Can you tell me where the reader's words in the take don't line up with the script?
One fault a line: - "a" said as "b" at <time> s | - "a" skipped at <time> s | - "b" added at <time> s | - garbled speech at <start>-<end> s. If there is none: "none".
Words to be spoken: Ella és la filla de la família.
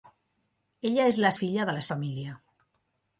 none